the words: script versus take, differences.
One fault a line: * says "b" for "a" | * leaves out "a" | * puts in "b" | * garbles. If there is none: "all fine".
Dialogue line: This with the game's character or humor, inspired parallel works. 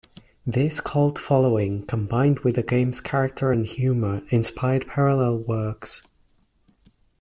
* puts in "cult following combined"
* says "and" for "or"